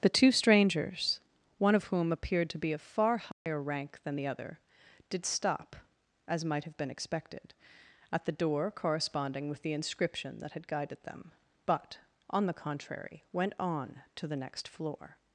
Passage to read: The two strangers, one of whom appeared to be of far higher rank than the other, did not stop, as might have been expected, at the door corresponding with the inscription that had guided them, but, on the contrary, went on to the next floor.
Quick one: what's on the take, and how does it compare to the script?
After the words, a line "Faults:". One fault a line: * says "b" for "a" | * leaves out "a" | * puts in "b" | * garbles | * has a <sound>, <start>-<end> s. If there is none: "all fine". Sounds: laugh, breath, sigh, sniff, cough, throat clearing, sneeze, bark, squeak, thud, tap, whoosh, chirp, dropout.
The two strangers, one of whom appeared to be of far higher rank than the other, did stop, as might have been expected, at the door corresponding with the inscription that had guided them, but, on the contrary, went on to the next floor.
Faults:
* has a dropout, 3.3-3.5 s
* leaves out "not"